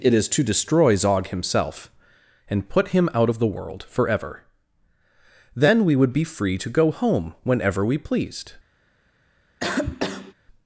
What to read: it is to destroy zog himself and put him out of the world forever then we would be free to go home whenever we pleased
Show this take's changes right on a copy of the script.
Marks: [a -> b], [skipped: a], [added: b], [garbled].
it is to destroy zog himself and put him out of the world forever then we would be free to go home whenever we pleased